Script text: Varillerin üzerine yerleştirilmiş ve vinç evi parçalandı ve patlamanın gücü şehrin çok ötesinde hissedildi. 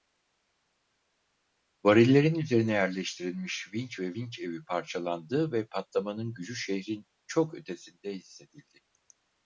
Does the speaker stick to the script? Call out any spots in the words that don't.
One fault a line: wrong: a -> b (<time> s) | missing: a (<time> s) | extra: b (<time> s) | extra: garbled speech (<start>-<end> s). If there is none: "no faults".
extra: vinç (3.7 s)